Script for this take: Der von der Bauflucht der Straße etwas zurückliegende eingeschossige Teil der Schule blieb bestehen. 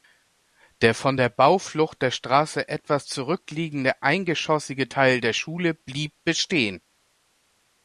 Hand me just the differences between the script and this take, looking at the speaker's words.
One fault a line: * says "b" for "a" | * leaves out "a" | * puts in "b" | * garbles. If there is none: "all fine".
all fine